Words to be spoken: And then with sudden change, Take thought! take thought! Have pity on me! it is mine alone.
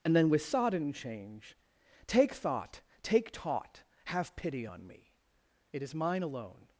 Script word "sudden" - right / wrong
wrong